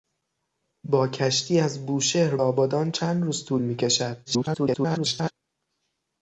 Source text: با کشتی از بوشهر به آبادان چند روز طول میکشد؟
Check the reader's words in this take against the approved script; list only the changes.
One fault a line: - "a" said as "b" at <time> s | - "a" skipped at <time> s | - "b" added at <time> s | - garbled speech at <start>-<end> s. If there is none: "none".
- "به" skipped at 2.4 s
- garbled speech at 4.3-5.3 s